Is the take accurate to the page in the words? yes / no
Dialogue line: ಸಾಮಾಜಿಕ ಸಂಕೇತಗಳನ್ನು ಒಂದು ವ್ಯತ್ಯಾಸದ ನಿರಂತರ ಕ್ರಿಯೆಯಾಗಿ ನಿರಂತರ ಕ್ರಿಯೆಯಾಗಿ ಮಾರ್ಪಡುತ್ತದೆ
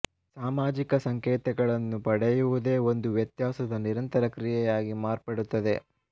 no